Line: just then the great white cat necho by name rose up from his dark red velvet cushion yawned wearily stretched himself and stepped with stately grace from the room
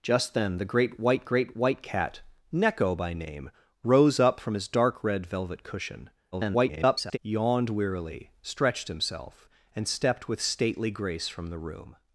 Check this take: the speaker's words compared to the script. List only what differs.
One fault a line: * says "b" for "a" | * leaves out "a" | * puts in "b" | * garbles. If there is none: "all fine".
* puts in "great white"
* garbles